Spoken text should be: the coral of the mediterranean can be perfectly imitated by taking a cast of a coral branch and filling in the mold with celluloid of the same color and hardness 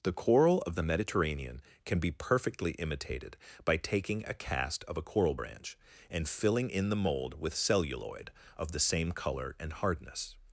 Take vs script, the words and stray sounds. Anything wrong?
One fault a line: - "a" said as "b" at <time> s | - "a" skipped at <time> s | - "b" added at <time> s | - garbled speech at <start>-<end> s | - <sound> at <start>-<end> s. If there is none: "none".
none